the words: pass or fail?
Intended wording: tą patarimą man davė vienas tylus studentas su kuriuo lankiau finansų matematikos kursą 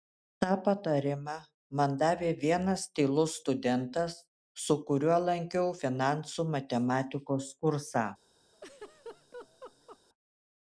pass